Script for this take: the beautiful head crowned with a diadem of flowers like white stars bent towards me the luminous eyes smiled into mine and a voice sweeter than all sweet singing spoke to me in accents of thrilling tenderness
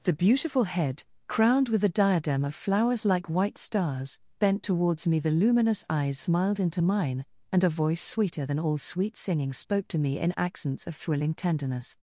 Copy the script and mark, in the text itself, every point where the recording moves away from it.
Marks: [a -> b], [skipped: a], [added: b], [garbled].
the beautiful head crowned with a diadem of flowers like white stars bent towards me the luminous eyes smiled into mine and a voice sweeter than all sweet singing spoke to me in accents of thrilling tenderness